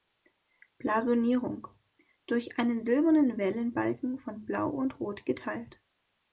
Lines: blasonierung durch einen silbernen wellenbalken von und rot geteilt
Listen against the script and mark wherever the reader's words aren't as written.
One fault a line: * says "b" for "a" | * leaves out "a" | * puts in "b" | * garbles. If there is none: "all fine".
* puts in "blau"